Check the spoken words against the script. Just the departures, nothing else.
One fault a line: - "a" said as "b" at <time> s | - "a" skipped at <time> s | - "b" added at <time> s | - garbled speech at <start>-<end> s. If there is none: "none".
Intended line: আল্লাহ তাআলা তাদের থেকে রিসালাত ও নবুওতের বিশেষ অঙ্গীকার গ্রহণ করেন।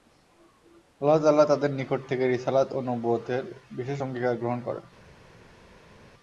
- "নিকট" added at 1.7 s